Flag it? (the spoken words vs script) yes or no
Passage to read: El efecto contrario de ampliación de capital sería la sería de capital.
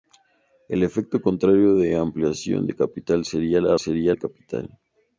no